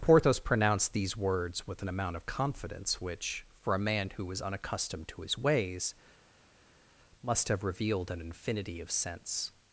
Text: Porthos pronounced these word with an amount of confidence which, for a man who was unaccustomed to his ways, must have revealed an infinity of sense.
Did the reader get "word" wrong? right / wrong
wrong